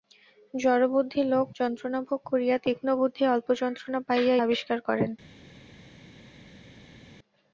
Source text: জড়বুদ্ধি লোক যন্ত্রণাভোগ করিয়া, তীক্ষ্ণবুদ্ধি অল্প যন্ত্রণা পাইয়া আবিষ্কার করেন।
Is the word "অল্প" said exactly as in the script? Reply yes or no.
yes